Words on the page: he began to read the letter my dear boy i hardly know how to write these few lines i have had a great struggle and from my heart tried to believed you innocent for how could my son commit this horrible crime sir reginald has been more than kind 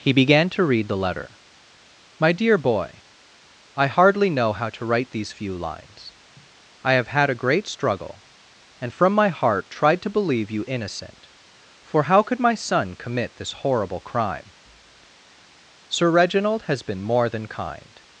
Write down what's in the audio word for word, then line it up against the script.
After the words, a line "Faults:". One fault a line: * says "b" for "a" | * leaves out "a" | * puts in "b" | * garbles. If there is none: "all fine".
he began to read the letter my dear boy i hardly know how to write these few lines i have had a great struggle and from my heart tried to believe you innocent for how could my son commit this horrible crime sir reginald has been more than kind
Faults:
* says "believe" for "believed"